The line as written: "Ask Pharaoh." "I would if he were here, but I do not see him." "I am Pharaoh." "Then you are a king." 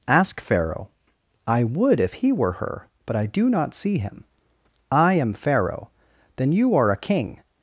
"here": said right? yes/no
no